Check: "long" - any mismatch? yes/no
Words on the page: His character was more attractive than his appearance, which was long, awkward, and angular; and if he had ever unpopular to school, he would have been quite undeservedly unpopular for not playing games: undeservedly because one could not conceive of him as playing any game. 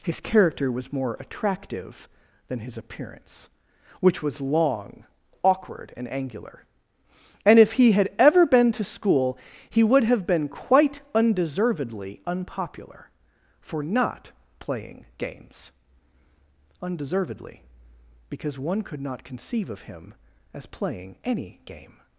no